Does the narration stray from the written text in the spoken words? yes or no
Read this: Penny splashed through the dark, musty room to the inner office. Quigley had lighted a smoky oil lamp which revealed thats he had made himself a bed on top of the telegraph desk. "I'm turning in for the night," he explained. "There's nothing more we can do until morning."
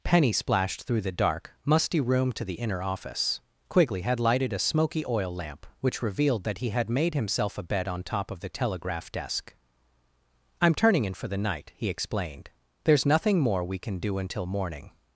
yes